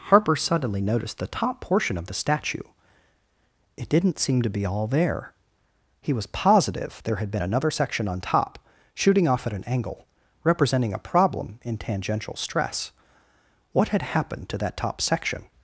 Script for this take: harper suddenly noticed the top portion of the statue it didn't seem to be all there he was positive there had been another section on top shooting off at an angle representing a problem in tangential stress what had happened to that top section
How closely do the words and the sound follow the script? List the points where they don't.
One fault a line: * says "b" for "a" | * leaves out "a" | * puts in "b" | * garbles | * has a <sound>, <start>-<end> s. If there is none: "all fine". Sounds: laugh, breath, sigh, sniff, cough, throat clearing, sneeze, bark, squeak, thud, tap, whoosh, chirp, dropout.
all fine